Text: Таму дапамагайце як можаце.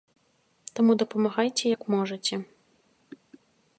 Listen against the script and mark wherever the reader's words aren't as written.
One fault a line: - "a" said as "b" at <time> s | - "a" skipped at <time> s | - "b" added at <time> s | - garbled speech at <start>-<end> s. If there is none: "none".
none